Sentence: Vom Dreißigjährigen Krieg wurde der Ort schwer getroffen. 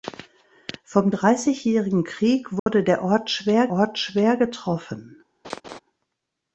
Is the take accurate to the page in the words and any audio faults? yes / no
no